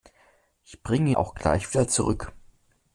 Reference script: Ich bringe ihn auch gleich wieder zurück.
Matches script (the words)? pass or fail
fail